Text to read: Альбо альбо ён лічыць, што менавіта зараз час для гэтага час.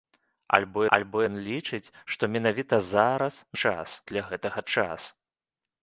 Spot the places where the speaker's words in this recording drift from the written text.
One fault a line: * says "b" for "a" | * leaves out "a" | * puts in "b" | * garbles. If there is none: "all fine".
all fine